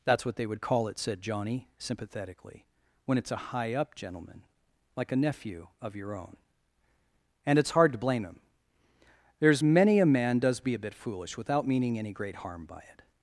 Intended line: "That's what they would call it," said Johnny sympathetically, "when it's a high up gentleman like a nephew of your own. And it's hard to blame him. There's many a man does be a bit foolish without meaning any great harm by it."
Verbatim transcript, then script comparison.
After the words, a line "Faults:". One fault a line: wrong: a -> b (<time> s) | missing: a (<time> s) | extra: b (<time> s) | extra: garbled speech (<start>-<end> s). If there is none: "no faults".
"That's what they would call it," said Johnny sympathetically, "when it's a high up gentleman like a nephew of your own. And it's hard to blame him. There's many a man does be a bit foolish without meaning any great harm by it."
Faults:
no faults